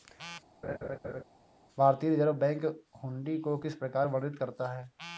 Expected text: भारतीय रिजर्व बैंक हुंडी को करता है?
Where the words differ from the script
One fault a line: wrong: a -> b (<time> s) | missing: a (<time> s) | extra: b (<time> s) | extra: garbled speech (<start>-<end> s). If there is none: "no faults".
extra: किस प्रकार वर्णित (3.6 s)